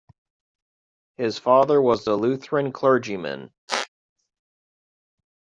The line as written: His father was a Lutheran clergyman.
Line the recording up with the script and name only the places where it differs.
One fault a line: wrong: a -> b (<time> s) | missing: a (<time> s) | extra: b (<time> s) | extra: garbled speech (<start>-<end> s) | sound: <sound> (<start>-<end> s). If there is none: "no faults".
sound: squeak (3.7-3.9 s)